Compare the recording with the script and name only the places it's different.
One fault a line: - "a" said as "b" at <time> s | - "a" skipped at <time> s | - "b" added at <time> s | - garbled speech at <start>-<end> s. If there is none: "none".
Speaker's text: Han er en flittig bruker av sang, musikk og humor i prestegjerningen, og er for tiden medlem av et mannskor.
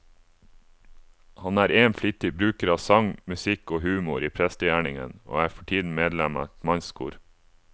none